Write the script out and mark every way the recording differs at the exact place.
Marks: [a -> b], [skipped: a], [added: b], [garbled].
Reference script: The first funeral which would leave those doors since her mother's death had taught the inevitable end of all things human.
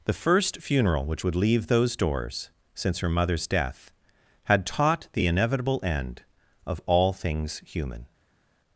The first funeral which would leave those doors since her mother's death had taught the inevitable end of all things human.